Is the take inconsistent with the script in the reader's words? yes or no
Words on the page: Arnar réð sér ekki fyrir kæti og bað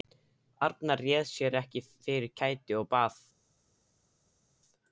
no